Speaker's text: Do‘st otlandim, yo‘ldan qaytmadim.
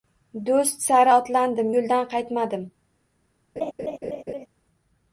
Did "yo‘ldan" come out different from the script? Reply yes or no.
no